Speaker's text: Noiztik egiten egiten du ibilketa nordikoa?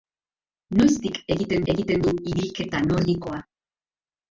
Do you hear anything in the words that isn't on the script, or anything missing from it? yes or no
no